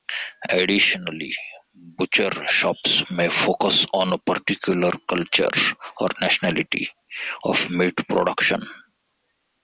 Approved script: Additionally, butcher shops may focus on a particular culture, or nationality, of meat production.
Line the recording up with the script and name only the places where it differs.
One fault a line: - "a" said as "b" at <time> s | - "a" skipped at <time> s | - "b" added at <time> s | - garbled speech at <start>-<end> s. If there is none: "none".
none